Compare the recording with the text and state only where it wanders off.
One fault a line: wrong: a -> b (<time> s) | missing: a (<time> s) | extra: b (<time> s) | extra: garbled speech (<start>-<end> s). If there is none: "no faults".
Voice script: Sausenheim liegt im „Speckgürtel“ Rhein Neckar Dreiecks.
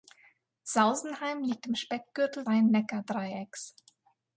no faults